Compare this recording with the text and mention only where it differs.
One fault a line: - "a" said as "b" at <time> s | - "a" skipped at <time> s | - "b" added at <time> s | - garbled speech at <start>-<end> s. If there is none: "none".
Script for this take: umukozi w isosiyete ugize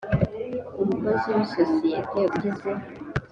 none